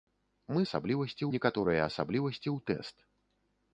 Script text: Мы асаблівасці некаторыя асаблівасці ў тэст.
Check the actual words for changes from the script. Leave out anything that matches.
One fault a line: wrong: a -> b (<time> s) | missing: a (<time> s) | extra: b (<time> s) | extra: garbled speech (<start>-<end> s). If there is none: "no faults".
no faults